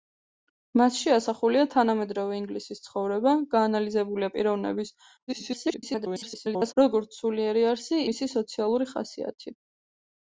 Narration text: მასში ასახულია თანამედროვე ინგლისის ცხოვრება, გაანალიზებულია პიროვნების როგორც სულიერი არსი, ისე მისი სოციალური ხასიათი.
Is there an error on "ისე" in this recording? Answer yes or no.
yes